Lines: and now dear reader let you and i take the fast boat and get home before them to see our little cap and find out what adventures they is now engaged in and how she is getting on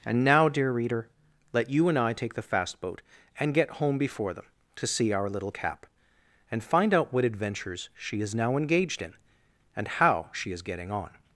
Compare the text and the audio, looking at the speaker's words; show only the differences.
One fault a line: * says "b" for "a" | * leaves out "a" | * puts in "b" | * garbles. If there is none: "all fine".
* says "she" for "they"